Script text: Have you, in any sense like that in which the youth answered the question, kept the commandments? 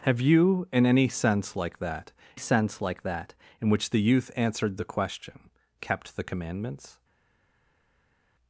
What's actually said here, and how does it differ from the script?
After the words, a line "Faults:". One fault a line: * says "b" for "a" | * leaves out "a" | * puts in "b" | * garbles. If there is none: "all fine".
Have you, in any sense like that sense like that in which the youth answered the question, kept the commandments?
Faults:
* puts in "sense like that"